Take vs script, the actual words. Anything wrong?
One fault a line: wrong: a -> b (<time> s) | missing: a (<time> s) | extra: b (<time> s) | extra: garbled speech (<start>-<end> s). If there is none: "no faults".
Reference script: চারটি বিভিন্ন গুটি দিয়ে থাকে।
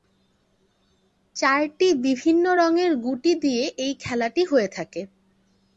extra: রঙের (2.6 s)
extra: এই খেলাটি হয়ে (3.8 s)